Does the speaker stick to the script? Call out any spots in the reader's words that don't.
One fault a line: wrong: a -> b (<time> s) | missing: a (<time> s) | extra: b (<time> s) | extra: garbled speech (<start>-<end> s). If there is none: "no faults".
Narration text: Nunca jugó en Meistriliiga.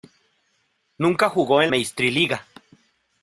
no faults